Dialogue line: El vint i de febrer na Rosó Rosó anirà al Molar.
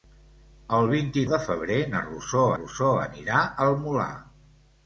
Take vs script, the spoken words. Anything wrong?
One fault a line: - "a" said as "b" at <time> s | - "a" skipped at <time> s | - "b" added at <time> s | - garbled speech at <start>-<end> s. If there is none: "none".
none